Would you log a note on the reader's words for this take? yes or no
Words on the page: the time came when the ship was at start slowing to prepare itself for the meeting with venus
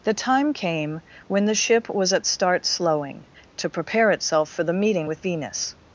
no